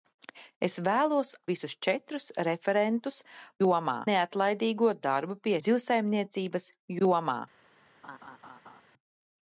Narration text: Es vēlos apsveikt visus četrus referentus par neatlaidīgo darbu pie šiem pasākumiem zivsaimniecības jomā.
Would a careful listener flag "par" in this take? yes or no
yes